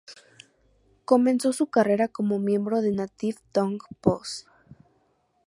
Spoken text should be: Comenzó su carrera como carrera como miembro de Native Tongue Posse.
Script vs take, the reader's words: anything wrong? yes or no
yes